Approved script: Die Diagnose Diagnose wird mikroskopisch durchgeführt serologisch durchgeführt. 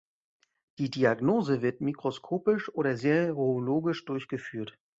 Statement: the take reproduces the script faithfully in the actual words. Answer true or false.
false